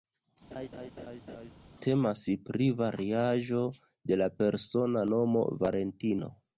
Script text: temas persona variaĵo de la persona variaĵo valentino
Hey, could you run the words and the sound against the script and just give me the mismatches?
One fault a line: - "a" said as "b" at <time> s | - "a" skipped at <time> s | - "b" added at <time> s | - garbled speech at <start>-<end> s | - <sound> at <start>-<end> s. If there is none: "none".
- laugh at 0.5-1.5 s
- "persona" said as "pri" at 2.5 s
- "variaĵo" said as "nomo" at 5.1 s